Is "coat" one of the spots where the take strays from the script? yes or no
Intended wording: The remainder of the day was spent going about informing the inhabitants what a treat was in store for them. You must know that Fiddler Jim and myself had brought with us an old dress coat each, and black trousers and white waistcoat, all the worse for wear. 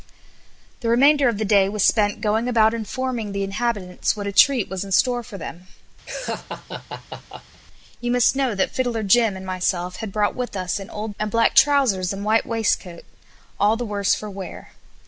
yes